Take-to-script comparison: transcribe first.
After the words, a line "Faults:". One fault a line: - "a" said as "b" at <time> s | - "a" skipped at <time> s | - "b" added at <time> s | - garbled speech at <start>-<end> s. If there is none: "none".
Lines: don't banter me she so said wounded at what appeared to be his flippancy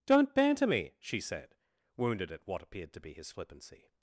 don't banter me she said wounded at what appeared to be his flippancy
Faults:
- "so" skipped at 1.2 s